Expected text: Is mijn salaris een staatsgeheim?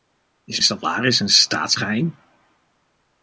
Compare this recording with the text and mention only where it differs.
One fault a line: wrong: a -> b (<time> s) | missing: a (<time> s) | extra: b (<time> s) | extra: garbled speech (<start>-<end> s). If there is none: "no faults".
missing: mijn (0.6 s)